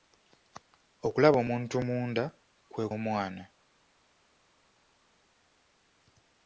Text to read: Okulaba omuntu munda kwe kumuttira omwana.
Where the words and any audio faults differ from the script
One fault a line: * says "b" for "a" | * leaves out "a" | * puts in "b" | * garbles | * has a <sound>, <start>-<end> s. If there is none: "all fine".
* leaves out "kumuttira"